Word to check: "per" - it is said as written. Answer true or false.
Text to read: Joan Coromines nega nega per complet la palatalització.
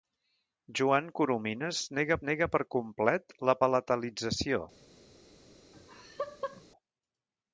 true